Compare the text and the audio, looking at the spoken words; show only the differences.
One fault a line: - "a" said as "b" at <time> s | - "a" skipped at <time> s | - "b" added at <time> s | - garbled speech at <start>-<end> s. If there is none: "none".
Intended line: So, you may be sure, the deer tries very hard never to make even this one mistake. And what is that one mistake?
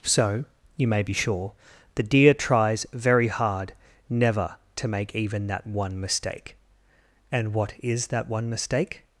- "this" said as "that" at 5.5 s